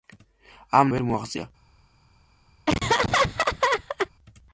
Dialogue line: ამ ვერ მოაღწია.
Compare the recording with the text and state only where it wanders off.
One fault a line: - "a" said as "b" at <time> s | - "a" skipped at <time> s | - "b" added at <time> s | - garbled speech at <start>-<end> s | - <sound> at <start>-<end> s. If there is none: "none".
- laugh at 2.7-4.1 s